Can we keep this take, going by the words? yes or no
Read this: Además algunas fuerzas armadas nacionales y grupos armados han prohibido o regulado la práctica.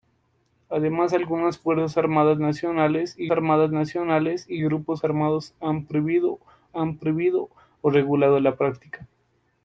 no